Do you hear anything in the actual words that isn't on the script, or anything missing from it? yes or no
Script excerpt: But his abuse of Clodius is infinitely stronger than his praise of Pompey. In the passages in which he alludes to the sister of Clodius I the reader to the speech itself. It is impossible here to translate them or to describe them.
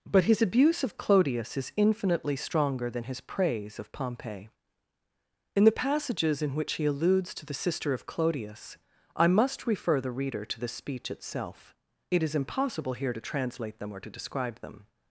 yes